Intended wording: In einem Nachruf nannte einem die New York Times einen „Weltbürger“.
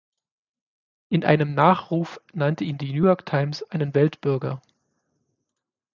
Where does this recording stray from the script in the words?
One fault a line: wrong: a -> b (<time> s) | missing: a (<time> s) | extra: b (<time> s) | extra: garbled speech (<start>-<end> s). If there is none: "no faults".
wrong: einem -> ihn (2.6 s)